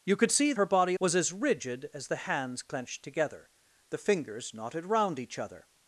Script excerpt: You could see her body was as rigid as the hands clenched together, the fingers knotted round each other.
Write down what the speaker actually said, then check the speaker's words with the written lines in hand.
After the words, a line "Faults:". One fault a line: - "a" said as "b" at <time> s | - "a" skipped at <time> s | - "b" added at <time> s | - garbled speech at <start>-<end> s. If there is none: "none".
You could see her body was as rigid as the hands clenched together, the fingers knotted round each other.
Faults:
none